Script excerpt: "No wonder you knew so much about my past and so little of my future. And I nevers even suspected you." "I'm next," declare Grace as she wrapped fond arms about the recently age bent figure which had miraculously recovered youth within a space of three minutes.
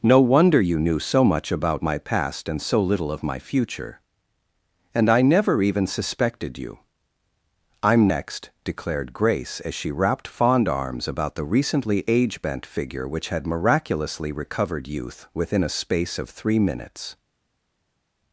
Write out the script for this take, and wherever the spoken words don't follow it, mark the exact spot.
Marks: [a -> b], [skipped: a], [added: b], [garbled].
"No wonder you knew so much about my past and so little of my future. And I [nevers -> never] even suspected you." "I'm next," [declare -> declared] Grace as she wrapped fond arms about the recently age bent figure which had miraculously recovered youth within a space of three minutes.